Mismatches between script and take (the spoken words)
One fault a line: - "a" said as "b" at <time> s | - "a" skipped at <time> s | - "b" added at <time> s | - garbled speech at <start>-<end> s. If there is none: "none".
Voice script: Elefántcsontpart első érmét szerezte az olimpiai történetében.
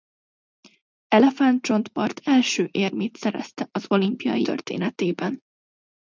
none